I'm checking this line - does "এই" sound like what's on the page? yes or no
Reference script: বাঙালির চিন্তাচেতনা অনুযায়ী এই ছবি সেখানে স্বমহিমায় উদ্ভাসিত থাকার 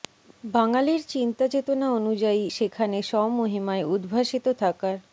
no